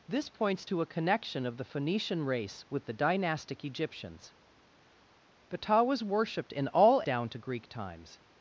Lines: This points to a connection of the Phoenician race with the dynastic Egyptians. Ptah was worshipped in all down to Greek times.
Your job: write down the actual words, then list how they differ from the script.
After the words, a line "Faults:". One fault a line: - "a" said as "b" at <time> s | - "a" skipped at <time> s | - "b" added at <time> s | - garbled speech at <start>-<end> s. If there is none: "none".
This points to a connection of the Phoenician race with the dynastic Egyptians. Ptah was worshipped in all down to Greek times.
Faults:
none